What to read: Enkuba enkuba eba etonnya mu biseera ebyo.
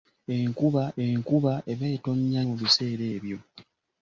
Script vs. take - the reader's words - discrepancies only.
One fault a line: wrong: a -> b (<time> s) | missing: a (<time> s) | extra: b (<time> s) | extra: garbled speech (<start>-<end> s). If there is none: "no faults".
no faults